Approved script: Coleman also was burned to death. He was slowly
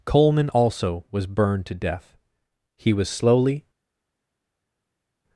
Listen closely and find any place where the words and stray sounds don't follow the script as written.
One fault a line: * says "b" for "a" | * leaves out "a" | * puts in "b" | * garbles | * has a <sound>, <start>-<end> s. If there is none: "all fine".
all fine